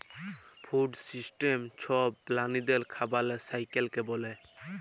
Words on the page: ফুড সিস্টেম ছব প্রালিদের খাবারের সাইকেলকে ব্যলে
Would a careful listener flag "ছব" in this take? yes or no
no